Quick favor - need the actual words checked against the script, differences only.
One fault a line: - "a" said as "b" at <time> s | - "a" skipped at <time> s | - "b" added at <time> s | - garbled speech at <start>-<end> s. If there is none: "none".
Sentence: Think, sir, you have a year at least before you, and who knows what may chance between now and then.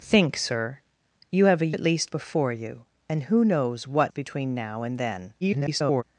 - "year" skipped at 1.8 s
- "may chance" skipped at 4.1 s
- garbled speech at 5.4-6.0 s